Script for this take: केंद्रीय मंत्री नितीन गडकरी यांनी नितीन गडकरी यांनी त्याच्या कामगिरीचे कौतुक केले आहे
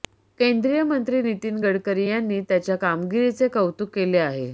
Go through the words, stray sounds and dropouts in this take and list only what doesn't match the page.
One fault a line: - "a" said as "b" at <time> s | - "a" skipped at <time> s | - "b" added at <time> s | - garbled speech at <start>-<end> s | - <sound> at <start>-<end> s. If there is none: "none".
- "नितीन गडकरी यांनी" skipped at 2.4 s